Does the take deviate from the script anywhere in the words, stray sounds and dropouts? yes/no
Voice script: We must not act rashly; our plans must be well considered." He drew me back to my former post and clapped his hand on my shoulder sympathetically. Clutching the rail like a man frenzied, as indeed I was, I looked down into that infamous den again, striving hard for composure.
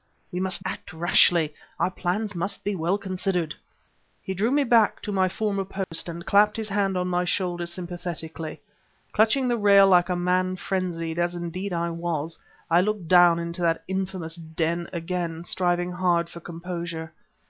yes